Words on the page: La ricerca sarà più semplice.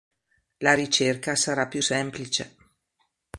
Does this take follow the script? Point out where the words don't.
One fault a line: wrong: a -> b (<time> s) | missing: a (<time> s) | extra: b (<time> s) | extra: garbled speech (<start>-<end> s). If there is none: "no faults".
no faults